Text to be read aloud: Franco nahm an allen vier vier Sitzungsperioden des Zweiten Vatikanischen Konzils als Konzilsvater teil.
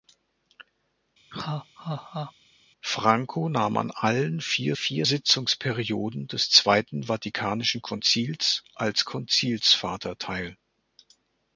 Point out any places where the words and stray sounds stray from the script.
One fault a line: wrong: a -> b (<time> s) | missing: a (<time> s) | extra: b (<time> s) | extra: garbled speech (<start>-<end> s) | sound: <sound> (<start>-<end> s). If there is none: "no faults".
sound: laugh (1.3-2.3 s)